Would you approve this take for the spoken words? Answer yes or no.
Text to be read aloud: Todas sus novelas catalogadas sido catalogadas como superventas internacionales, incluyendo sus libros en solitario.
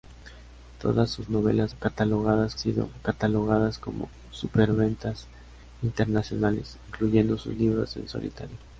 yes